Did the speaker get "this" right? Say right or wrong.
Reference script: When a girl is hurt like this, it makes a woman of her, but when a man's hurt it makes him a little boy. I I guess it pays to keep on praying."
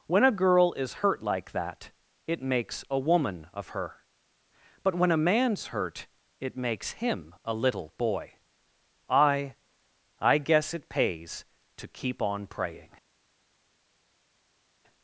wrong